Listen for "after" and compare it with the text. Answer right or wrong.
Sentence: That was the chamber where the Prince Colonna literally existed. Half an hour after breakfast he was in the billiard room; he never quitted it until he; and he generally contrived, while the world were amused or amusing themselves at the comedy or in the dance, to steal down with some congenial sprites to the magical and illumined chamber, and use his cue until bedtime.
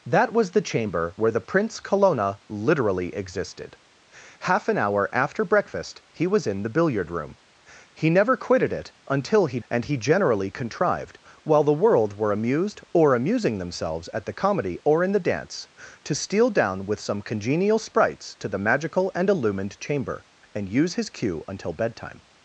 right